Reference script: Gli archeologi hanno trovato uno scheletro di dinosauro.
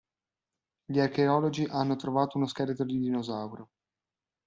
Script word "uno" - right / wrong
right